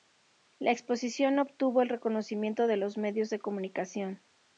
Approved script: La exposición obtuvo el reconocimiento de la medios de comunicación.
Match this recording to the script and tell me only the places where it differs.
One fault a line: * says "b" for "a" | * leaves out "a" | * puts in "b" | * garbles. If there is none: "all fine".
* says "los" for "la"